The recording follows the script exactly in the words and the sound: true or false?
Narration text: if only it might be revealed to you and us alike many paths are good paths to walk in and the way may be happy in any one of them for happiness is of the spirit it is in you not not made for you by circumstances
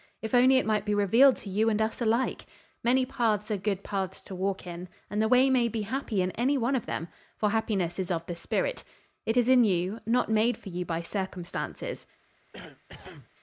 false